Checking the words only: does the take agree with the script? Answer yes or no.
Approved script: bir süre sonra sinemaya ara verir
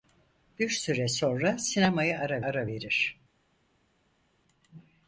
no